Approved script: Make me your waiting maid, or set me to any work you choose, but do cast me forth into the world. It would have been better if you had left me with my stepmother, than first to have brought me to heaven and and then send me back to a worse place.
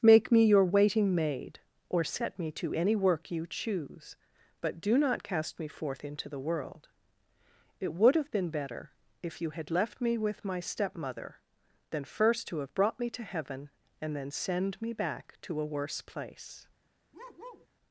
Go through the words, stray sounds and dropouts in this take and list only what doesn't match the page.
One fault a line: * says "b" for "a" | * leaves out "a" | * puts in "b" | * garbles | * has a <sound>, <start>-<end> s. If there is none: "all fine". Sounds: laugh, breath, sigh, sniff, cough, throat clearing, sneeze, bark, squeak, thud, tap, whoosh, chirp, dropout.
* puts in "not"
* leaves out "and"
* has a bark, 17.1-17.7 s